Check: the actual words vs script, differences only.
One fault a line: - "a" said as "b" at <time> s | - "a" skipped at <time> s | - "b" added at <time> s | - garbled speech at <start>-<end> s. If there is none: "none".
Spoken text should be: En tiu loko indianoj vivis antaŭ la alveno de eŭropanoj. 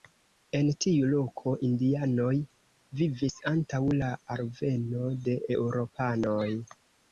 none